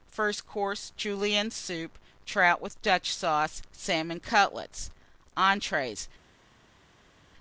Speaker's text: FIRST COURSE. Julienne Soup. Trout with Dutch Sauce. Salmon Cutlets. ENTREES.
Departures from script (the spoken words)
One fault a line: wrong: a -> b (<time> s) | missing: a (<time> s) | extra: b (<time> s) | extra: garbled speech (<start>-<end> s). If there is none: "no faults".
no faults